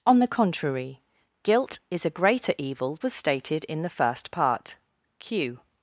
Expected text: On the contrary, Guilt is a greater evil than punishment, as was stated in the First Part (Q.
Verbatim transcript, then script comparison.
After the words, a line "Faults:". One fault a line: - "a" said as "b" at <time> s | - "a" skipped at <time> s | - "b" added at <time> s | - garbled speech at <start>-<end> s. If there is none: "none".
On the contrary, Guilt is a greater evil was stated in the First Part (Q.
Faults:
- "than punishment as" skipped at 3.0 s